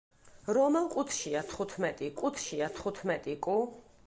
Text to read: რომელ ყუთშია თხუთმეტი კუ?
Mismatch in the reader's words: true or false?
true